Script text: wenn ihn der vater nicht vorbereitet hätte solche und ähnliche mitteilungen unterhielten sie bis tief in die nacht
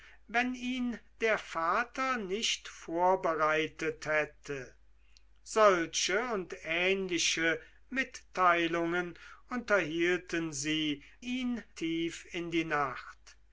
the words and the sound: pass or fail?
fail